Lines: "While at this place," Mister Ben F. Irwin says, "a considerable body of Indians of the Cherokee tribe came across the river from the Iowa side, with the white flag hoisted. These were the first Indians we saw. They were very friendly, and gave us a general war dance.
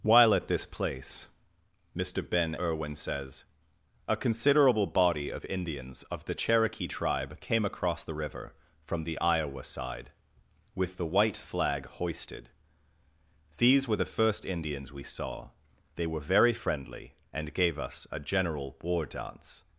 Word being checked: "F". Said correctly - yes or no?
no